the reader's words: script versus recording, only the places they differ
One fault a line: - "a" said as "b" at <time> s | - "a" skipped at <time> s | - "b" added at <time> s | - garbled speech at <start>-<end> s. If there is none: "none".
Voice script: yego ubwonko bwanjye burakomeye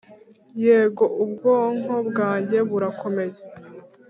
none